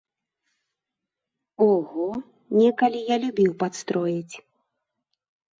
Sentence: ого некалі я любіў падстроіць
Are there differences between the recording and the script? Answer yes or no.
no